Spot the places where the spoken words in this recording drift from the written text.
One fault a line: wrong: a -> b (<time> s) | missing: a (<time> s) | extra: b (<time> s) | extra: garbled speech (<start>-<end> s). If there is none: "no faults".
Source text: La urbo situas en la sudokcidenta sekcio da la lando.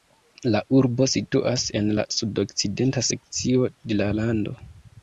wrong: da -> de (3.7 s)